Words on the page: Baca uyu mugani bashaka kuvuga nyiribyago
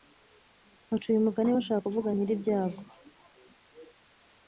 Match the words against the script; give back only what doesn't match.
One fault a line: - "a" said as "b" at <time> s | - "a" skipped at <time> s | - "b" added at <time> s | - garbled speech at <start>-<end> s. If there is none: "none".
none